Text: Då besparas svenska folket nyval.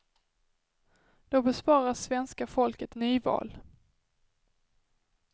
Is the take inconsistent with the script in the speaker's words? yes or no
no